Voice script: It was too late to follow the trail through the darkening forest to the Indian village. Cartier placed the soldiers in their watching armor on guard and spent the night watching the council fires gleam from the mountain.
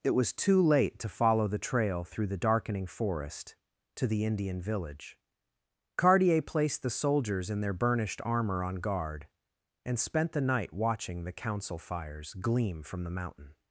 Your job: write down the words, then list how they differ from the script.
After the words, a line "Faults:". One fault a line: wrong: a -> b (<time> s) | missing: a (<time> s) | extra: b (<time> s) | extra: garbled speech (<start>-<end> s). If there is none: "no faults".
It was too late to follow the trail through the darkening forest to the Indian village. Cartier placed the soldiers in their burnished armor on guard and spent the night watching the council fires gleam from the mountain.
Faults:
wrong: watching -> burnished (7.7 s)